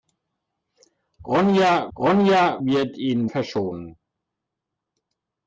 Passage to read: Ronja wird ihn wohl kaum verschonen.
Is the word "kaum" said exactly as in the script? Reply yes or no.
no